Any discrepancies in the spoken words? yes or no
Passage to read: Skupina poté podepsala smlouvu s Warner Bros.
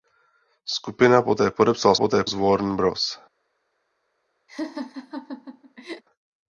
yes